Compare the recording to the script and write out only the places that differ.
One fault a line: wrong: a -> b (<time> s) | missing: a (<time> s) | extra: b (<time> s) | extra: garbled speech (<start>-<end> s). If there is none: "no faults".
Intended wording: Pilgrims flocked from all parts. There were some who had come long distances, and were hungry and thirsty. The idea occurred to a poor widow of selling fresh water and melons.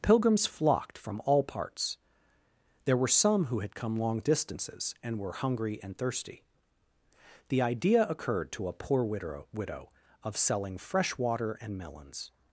extra: widow (9.5 s)